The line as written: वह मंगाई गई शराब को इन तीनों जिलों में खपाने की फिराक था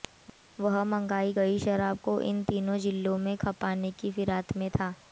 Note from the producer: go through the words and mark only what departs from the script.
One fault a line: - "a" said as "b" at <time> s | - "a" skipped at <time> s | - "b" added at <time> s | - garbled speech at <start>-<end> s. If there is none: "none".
- "में" added at 4.6 s